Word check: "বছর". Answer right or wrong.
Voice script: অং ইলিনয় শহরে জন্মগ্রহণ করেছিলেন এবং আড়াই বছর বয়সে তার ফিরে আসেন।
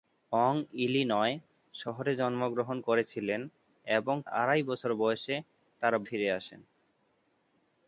right